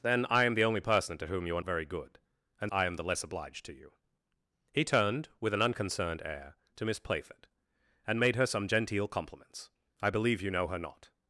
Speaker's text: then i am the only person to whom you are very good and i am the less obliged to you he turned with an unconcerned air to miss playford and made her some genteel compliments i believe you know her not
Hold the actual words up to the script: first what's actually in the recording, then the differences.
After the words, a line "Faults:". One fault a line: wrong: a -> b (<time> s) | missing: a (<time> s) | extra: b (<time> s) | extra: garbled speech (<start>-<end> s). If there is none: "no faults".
then i am the only person to whom you are very good and i am the less obliged to you he turned with an unconcerned air to miss playford and made her some genteel compliments i believe you know her not
Faults:
no faults